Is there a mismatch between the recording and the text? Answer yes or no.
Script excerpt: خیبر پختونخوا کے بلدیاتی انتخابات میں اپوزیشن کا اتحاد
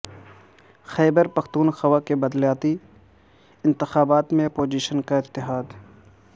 no